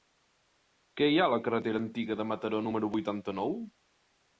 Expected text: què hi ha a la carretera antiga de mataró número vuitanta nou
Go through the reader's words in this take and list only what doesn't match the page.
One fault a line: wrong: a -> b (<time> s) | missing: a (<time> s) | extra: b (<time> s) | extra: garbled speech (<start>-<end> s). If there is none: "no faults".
no faults